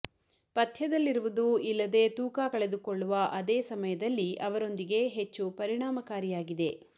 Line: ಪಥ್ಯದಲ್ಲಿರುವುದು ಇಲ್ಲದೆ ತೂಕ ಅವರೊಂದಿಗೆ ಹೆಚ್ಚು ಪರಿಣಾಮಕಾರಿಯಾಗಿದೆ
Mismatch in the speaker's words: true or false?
true